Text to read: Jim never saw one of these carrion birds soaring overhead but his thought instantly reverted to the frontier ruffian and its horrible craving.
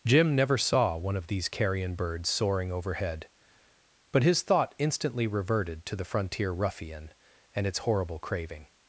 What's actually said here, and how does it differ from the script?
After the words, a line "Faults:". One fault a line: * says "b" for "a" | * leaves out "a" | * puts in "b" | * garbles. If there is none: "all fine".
Jim never saw one of these carrion birds soaring overhead but his thought instantly reverted to the frontier ruffian and its horrible craving.
Faults:
all fine